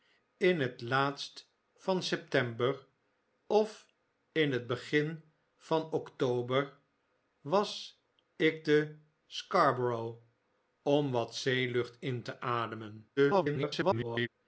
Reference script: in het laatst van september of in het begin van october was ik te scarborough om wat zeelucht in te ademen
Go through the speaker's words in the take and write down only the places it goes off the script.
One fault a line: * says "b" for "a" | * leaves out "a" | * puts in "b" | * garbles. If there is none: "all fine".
* garbles